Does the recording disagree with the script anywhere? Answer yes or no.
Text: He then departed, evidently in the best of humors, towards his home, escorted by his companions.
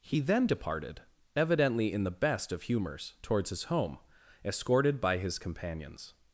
no